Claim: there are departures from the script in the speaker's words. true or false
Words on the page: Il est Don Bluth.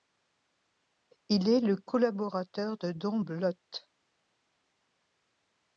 true